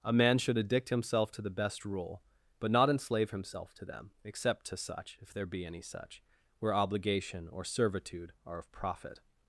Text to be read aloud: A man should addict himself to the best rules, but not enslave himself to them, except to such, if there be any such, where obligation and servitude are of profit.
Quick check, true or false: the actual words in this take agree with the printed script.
false